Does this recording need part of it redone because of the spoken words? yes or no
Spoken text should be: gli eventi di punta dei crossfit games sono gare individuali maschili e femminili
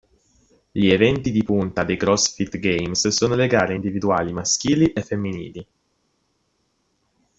yes